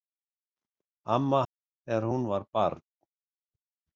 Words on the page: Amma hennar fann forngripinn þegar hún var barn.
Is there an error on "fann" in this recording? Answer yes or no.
yes